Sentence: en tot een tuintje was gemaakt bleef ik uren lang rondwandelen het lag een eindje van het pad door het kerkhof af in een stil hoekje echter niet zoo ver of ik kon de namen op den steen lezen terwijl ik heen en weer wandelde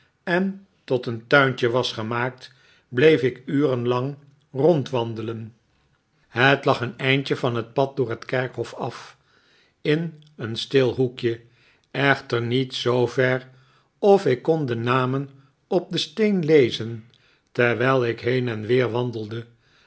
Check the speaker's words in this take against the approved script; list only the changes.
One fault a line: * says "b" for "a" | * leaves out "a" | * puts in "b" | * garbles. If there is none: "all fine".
all fine